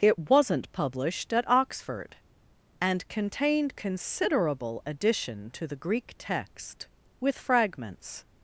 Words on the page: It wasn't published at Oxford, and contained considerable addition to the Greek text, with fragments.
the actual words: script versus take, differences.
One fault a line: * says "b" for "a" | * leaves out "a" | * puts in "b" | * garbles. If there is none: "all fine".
all fine